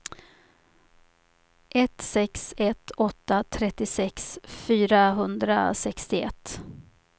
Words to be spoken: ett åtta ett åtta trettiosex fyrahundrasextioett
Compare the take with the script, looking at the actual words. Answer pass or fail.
fail